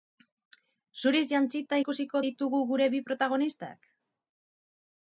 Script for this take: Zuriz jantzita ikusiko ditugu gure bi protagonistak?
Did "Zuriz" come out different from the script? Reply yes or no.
no